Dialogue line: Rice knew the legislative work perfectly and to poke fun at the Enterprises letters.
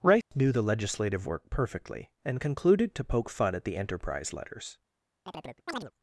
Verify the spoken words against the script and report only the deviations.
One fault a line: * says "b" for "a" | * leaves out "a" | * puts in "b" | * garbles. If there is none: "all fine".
* puts in "concluded"
* says "Enterprise" for "Enterprises"